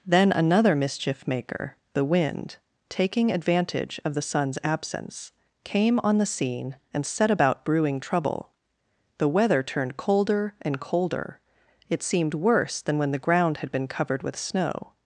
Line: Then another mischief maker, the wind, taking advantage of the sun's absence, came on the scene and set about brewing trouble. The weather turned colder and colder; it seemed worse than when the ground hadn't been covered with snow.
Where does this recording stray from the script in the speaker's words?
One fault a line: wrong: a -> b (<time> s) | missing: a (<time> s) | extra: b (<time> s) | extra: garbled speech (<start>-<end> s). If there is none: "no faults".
wrong: hadn't -> had (13.6 s)